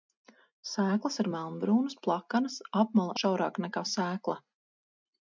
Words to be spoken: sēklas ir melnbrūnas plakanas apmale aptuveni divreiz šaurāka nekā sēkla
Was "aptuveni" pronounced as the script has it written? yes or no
no